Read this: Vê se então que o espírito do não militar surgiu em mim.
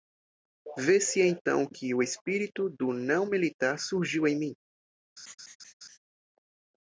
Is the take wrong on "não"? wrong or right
right